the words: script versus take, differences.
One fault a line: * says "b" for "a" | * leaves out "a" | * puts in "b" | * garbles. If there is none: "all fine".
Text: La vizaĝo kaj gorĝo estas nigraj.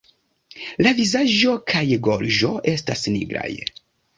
all fine